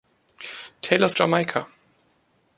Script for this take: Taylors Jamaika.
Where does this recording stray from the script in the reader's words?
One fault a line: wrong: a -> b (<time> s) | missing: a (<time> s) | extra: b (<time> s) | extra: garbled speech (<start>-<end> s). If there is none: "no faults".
no faults